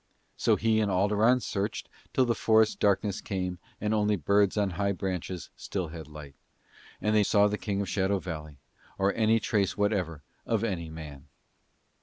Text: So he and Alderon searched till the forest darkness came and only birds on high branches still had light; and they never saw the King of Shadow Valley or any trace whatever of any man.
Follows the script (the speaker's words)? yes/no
no